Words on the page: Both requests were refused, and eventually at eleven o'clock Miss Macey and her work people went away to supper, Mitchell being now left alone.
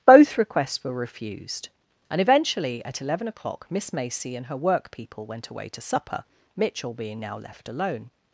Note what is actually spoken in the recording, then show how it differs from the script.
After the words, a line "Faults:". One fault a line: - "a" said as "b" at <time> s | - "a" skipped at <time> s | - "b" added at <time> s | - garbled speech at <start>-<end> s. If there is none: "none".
Both requests were refused, and eventually at eleven o'clock Miss Macey and her work people went away to supper, Mitchell being now left alone.
Faults:
none